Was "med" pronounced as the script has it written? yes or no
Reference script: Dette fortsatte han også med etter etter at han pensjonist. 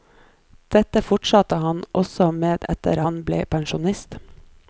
yes